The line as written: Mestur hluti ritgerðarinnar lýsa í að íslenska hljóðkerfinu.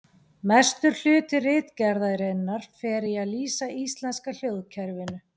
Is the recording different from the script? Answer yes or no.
yes